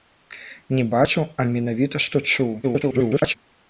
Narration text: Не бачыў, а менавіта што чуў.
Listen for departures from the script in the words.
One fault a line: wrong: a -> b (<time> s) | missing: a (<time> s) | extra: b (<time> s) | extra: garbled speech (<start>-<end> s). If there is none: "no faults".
extra: garbled speech (2.6-3.3 s)